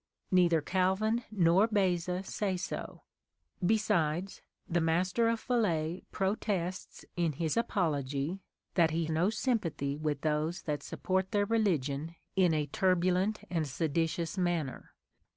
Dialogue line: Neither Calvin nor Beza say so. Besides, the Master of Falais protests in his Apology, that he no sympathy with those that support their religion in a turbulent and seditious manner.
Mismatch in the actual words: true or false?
false